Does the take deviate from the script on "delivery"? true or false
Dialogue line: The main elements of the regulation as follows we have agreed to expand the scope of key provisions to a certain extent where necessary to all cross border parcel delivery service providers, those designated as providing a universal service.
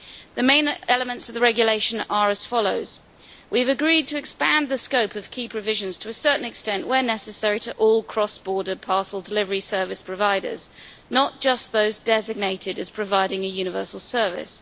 false